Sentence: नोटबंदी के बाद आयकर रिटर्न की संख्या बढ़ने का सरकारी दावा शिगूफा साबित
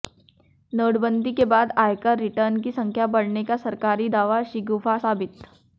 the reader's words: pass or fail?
pass